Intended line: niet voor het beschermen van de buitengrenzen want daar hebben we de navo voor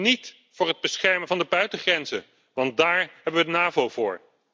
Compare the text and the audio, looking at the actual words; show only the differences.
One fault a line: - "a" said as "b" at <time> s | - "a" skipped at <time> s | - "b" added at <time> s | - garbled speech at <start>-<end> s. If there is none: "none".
none